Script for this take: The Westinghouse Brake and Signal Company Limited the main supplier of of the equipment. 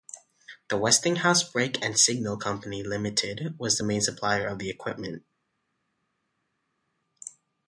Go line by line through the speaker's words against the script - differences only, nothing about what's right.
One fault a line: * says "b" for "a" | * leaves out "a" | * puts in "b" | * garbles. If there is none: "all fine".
* puts in "was"
* leaves out "of"